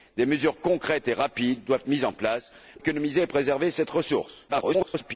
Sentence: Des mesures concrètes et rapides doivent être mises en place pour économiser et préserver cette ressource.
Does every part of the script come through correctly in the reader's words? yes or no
no